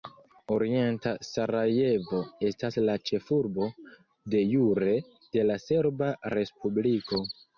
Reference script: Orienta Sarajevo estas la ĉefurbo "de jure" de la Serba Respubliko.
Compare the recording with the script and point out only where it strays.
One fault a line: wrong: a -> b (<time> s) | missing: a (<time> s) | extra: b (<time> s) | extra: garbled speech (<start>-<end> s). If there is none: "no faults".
no faults